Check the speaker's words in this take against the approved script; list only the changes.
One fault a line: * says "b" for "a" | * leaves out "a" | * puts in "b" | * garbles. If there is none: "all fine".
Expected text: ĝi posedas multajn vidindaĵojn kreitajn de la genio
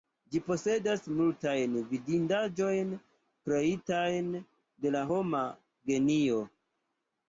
* puts in "homa"